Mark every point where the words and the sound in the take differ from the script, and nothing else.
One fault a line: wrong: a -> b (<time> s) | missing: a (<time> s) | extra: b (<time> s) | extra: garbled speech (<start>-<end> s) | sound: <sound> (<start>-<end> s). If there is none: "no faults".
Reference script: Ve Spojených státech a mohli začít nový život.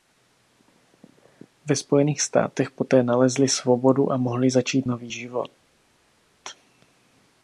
extra: poté nalezli svobodu (2.7 s)